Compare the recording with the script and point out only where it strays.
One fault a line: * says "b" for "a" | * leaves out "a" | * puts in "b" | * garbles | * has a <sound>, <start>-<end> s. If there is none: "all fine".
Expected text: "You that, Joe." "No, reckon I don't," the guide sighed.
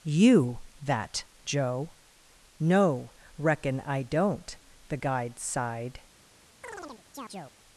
* has a chirp, 6.6-7.6 s